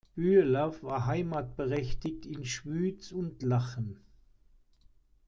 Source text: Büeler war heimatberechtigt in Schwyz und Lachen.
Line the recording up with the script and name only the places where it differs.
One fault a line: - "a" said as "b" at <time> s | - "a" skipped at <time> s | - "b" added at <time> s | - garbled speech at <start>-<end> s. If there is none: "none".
none